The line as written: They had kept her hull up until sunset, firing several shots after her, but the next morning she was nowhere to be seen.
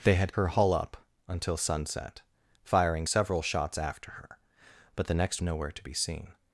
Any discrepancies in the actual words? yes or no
yes